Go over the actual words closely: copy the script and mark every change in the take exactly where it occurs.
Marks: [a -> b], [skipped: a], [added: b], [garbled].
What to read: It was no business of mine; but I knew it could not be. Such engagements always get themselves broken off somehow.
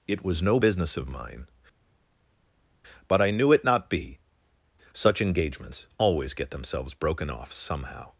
It was no business of mine; but I knew it [skipped: could] not be. Such engagements always get themselves broken off somehow.